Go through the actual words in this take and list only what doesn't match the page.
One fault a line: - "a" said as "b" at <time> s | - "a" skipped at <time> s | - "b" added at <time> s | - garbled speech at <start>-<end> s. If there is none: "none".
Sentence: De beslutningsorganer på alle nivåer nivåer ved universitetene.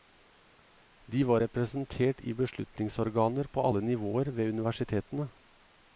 - "var representert i" added at 1.3 s
- "nivåer" skipped at 4.3 s